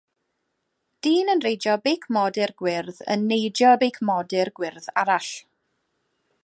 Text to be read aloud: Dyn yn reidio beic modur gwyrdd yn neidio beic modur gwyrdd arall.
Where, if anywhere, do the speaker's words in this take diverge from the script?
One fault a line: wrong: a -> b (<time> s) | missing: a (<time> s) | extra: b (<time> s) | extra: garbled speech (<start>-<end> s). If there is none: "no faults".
no faults